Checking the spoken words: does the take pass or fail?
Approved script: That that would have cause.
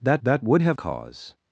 pass